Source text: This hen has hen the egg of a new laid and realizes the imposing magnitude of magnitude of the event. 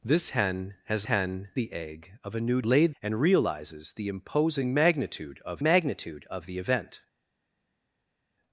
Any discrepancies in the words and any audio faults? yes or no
no